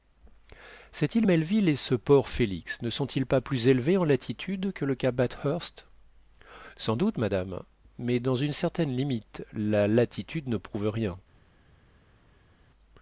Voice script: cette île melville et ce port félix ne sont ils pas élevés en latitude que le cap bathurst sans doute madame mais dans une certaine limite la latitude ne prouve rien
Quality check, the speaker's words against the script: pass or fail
fail